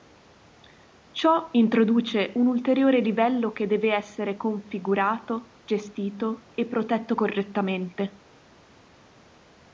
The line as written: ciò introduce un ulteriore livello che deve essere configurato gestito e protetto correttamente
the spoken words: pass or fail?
pass